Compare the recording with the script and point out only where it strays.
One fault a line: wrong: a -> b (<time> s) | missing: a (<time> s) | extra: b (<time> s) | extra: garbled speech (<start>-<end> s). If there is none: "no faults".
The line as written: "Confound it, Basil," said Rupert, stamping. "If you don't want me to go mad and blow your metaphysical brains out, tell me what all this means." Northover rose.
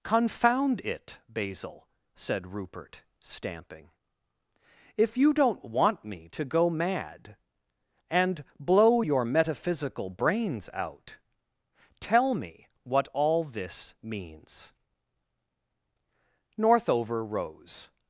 no faults